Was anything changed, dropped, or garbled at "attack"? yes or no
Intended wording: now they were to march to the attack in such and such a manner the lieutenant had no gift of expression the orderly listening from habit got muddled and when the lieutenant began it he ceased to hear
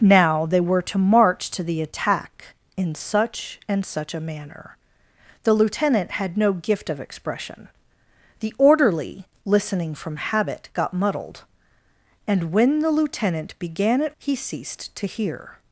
no